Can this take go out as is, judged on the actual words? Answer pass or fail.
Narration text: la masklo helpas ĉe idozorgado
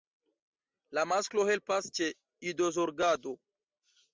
pass